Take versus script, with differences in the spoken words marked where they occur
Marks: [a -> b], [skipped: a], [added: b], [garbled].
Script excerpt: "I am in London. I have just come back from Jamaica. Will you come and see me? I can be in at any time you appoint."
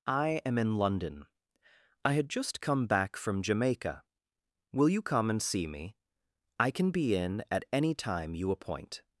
"I am in London. I [have -> had] just come back from Jamaica. Will you come and see me? I can be in at any time you appoint."